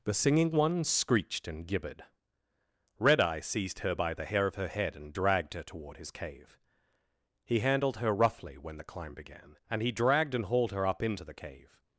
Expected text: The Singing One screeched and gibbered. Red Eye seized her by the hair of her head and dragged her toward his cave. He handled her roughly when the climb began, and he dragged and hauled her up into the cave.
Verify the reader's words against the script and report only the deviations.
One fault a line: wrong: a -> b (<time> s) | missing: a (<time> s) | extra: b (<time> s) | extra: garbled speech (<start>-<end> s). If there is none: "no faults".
no faults